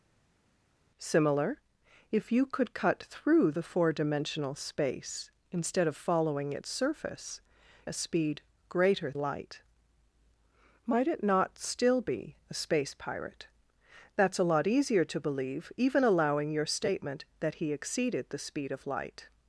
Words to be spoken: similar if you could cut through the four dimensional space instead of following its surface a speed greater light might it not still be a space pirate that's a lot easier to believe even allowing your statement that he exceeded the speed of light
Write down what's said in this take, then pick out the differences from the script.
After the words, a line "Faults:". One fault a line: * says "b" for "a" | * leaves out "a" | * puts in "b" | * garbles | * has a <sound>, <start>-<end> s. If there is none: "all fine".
similar if you could cut through the four dimensional space instead of following its surface a speed greater light might it not still be a space pirate that's a lot easier to believe even allowing your statement that he exceeded the speed of light
Faults:
all fine